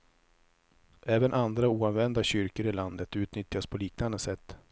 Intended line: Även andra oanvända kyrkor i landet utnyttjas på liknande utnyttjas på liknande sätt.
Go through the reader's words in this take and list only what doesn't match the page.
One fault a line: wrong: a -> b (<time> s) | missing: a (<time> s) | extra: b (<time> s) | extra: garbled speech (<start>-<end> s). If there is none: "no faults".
missing: utnyttjas på liknande (4.2 s)